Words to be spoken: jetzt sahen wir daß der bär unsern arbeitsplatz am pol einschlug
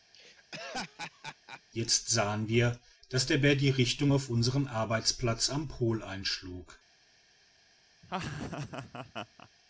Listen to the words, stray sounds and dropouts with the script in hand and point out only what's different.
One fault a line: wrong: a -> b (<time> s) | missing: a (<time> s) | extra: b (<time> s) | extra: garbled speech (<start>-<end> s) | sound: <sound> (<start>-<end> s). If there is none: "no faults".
sound: laugh (0.1-1.6 s)
extra: die richtung auf (3.6 s)
sound: laugh (8.0-9.5 s)